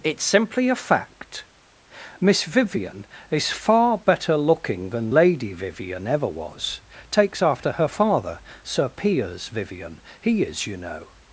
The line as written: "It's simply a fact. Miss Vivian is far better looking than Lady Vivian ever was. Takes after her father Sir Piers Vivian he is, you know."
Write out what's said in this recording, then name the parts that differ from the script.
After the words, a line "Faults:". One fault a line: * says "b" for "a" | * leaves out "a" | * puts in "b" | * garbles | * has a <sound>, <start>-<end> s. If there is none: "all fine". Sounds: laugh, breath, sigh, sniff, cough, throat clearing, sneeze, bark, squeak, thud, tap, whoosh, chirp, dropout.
"It's simply a fact. Miss Vivian is far better looking than Lady Vivian ever was. Takes after her father Sir Piers Vivian he is, you know."
Faults:
all fine